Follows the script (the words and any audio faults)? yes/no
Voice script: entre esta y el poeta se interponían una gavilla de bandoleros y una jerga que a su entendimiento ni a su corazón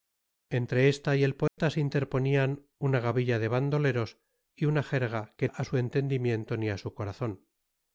no